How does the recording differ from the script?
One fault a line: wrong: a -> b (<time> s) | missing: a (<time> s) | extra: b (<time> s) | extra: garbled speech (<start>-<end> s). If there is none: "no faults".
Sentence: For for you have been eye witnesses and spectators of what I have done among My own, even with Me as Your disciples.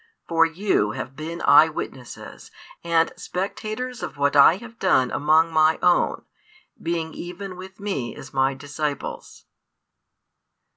missing: for (0.5 s)
extra: being (6.8 s)
wrong: Your -> My (8.3 s)